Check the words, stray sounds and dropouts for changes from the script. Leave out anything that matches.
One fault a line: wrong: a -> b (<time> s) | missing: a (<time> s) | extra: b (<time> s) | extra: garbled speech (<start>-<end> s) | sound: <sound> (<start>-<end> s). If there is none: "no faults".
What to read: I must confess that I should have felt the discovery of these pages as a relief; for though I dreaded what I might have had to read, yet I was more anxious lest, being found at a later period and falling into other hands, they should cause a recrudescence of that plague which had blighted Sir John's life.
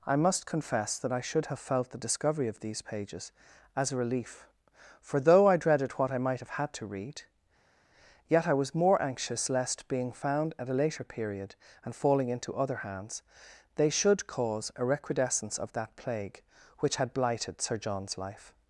no faults